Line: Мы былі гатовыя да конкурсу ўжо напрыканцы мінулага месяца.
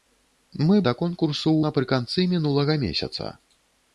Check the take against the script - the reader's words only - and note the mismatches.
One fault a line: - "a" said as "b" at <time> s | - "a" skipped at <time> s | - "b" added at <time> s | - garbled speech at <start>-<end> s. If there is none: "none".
- "былі гатовыя" skipped at 0.8 s
- "ўжо" skipped at 1.6 s